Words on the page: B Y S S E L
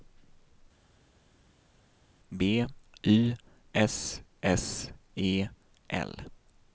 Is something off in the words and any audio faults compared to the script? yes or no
no